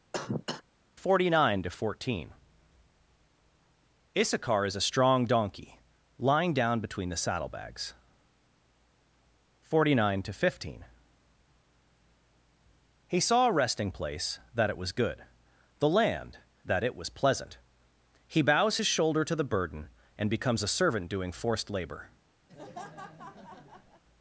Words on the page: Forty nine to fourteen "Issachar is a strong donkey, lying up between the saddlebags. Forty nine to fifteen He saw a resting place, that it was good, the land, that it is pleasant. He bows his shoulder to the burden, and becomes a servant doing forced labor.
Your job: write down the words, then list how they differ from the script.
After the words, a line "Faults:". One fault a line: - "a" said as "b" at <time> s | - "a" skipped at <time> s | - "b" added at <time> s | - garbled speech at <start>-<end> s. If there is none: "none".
Forty nine to fourteen "Issachar is a strong donkey, lying down between the saddlebags. Forty nine to fifteen He saw a resting place, that it was good, the land, that it was pleasant. He bows his shoulder to the burden, and becomes a servant doing forced labor.
Faults:
- "up" said as "down" at 6.5 s
- "is" said as "was" at 16.9 s